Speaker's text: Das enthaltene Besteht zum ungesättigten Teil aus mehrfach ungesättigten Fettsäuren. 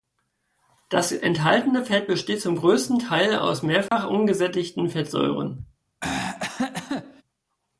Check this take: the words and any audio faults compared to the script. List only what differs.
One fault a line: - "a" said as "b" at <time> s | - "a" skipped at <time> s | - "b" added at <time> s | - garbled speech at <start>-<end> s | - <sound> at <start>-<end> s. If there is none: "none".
- "Fett" added at 1.9 s
- "ungesättigten" said as "größten" at 2.5 s
- dropout at 3.9-3.9 s
- throat clearing at 6.0-7.2 s